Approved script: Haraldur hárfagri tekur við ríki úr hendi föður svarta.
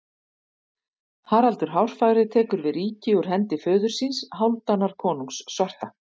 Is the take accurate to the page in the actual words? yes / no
no